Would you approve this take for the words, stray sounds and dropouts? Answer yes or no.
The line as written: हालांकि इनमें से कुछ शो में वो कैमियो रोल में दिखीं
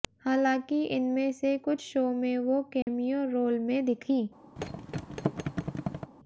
no